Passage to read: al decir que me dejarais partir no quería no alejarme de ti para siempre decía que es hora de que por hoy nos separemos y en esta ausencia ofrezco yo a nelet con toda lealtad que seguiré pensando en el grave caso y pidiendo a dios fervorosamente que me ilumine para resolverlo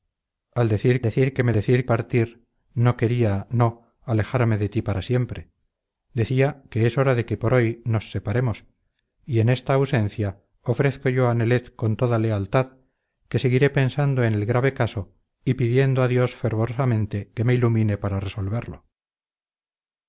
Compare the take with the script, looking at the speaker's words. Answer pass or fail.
fail